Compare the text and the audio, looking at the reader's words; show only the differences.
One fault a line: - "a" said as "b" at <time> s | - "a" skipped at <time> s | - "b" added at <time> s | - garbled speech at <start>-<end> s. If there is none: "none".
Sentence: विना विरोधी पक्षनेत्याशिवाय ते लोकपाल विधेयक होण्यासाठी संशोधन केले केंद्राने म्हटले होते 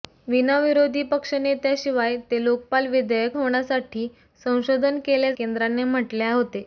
none